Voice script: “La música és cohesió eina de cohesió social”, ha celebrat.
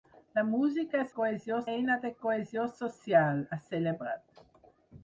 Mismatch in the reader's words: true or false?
false